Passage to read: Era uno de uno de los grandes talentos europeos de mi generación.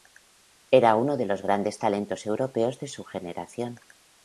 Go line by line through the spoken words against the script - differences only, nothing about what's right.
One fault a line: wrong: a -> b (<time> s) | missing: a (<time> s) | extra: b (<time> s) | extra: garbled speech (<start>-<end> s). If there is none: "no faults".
missing: uno de (1.3 s)
wrong: mi -> su (2.9 s)